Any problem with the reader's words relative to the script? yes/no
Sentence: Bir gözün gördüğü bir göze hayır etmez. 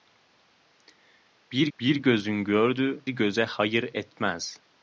yes